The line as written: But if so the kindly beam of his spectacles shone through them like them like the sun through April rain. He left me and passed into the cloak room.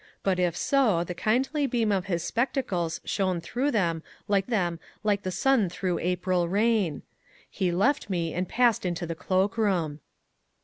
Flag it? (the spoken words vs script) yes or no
no